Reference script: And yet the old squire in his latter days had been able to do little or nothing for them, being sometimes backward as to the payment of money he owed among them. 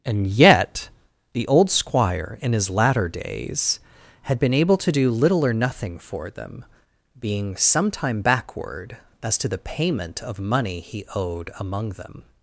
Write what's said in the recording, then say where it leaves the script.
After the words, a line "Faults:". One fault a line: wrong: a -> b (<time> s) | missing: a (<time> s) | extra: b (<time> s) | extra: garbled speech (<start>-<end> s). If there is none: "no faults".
And yet the old squire in his latter days had been able to do little or nothing for them, being sometime backward as to the payment of money he owed among them.
Faults:
wrong: sometimes -> sometime (7.5 s)